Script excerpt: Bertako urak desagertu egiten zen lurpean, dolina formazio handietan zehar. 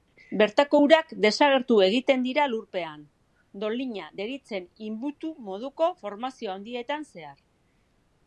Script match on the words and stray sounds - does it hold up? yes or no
no